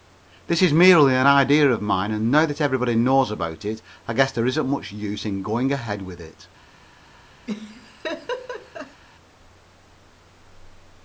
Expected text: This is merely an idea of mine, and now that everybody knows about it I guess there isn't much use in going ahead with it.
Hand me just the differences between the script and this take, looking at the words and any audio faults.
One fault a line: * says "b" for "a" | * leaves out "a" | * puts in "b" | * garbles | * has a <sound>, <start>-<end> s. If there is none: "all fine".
* has a laugh, 7.5-9.0 s